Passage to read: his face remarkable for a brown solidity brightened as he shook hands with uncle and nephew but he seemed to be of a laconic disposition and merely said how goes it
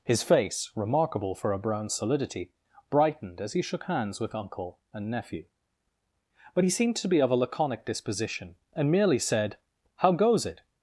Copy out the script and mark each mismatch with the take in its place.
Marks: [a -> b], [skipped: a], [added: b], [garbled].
his face remarkable for a brown solidity brightened as he shook hands with uncle and nephew but he seemed to be of a laconic disposition and merely said how goes it